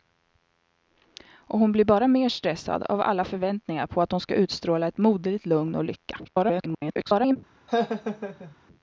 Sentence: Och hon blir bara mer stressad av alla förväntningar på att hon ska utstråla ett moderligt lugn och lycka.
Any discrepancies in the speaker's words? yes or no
yes